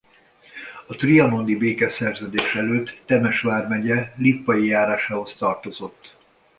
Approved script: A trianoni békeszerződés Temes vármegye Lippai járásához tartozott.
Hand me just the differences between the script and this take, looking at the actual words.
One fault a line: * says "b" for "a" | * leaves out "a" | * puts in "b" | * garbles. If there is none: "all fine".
* puts in "előtt"